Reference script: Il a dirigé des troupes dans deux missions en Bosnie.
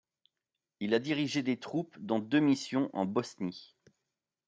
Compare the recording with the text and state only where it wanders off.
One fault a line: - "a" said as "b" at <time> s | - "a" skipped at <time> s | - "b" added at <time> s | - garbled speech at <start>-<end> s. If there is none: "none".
none